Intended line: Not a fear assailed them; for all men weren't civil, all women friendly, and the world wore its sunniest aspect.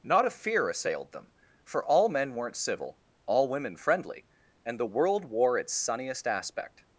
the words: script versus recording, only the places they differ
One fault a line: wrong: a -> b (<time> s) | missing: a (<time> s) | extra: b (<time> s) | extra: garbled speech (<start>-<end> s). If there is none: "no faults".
no faults